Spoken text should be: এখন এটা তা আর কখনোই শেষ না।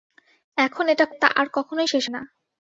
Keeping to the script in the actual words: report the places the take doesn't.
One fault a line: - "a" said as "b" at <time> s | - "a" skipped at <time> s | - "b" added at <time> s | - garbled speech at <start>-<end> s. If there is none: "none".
none